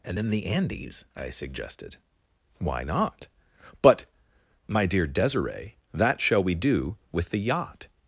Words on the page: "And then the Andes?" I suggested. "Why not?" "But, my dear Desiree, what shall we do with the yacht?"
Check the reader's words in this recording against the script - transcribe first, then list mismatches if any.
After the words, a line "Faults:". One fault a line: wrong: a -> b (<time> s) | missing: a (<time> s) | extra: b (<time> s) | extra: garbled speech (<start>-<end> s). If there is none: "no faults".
"And then the Andes?" I suggested. "Why not?" "But, my dear Desiree, that shall we do with the yacht?"
Faults:
wrong: what -> that (5.9 s)